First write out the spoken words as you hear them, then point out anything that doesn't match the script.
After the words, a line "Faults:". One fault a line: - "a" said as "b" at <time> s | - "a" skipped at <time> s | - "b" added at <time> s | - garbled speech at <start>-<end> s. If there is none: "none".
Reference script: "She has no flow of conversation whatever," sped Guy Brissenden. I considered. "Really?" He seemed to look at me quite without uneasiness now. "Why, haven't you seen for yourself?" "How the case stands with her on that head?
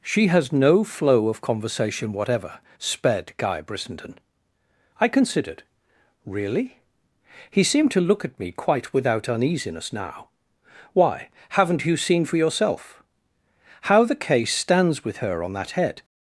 "She has no flow of conversation whatever," sped Guy Brissenden. I considered. "Really?" He seemed to look at me quite without uneasiness now. "Why, haven't you seen for yourself?" "How the case stands with her on that head?
Faults:
none